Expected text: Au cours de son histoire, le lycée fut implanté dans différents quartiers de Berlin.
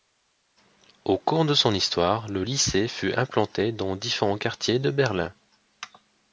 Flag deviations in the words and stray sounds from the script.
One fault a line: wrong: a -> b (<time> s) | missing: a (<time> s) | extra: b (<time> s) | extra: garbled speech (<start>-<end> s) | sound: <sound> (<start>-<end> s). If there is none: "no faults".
no faults